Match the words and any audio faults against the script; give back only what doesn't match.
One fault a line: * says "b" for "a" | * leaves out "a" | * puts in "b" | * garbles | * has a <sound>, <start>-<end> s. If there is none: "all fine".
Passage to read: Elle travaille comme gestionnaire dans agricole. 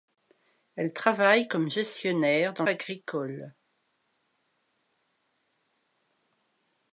all fine